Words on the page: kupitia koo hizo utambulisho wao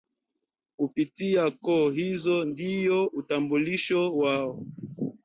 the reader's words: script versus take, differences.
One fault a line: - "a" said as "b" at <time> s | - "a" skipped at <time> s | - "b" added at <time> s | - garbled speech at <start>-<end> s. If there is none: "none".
- "ndio" added at 2.4 s